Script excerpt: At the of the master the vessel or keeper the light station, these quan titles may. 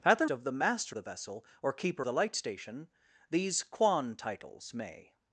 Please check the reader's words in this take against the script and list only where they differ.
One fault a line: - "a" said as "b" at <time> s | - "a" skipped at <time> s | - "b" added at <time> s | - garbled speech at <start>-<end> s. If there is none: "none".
none